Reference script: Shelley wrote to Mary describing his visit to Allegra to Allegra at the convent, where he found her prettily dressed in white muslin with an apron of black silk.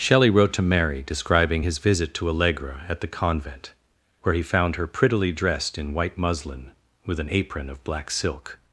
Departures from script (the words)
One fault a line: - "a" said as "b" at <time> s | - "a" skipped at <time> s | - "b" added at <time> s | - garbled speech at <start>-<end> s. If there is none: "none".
- "to Allegra" skipped at 2.8 s